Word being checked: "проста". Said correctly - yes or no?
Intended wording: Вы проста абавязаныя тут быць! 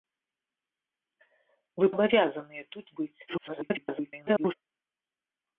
no